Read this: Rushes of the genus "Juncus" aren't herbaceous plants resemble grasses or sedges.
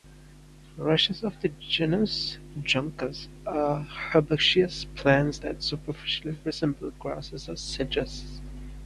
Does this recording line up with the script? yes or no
no